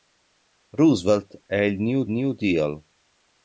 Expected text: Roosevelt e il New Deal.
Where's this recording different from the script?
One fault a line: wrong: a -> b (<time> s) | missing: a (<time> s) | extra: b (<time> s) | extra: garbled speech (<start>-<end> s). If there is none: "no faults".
extra: New (2.1 s)